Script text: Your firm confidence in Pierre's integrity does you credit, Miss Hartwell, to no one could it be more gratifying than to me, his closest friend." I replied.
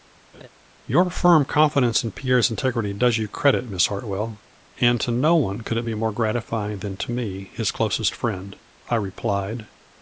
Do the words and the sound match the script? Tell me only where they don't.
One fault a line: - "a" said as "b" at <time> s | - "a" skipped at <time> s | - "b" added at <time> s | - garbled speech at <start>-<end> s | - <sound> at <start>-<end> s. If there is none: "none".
- laugh at 0.3-0.5 s
- "and" added at 4.8 s